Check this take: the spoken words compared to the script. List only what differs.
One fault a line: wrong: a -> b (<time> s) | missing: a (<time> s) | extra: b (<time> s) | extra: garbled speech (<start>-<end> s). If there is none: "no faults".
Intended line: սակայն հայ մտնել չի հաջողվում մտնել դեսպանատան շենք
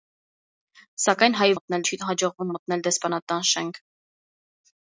no faults